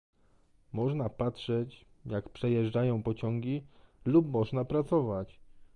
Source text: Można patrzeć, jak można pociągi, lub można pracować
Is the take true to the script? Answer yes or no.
no